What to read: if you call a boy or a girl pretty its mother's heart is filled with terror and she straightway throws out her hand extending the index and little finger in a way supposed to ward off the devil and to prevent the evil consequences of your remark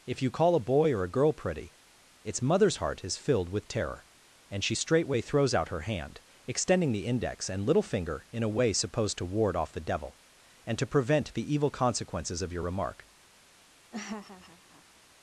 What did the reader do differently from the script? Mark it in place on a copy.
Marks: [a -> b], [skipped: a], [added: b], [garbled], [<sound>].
if you call a boy or a girl pretty its mother's heart is filled with terror and she straightway throws out her hand extending the index and little finger in a way supposed to ward off the devil and to prevent the evil consequences of your remark [laugh]